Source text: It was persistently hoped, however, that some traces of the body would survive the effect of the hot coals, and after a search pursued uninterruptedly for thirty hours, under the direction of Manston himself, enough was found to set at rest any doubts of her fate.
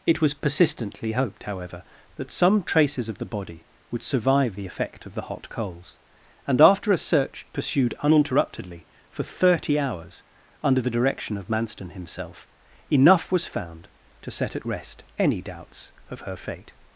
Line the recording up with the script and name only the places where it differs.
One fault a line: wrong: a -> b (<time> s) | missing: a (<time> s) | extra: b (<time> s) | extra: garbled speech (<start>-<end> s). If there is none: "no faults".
no faults